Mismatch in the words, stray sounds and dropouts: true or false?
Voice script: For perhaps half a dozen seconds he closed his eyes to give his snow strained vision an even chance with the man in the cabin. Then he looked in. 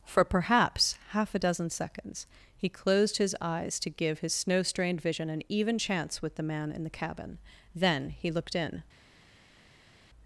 false